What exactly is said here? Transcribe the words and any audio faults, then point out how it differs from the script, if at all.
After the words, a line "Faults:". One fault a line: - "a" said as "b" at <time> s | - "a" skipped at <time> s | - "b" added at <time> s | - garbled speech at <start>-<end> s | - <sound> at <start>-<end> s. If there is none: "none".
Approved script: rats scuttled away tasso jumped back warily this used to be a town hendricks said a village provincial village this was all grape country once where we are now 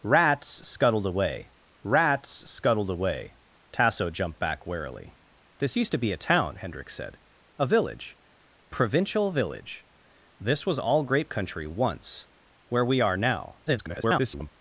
rats scuttled away rats scuttled away tasso jumped back warily this used to be a town hendricks said a village provincial village this was all grape country once where we are now [garbled]
Faults:
- "rats scuttled away" added at 1.8 s
- garbled speech at 13.7-14.5 s